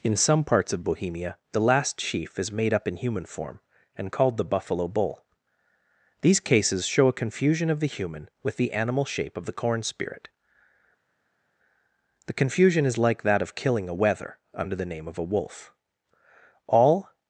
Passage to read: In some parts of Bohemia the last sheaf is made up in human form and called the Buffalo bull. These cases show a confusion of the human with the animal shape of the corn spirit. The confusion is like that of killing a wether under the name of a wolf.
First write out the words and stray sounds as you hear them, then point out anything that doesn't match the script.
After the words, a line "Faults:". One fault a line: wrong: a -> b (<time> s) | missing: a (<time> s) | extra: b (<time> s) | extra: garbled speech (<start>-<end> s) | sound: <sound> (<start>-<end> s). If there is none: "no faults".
In some parts of Bohemia the last sheaf is made up in human form and called the Buffalo bull. These cases show a confusion of the human with the animal shape of the corn spirit. The confusion is like that of killing a wether under the name of a wolf. All
Faults:
extra: All (16.7 s)